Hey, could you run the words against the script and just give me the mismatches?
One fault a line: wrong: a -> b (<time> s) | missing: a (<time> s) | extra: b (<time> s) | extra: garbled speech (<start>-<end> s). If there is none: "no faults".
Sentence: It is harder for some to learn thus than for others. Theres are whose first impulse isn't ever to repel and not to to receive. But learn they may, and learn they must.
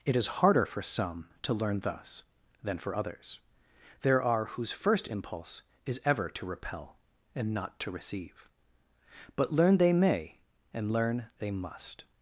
wrong: Theres -> There (4.0 s)
wrong: isn't -> is (5.9 s)
missing: to (7.9 s)